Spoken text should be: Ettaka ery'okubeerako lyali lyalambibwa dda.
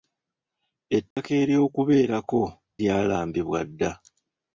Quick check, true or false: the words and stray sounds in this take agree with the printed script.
false